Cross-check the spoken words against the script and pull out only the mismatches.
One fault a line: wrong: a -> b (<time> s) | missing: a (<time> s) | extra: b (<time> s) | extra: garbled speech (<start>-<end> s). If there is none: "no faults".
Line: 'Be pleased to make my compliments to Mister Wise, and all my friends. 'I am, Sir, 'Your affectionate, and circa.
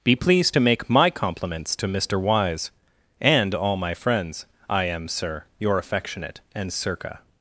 no faults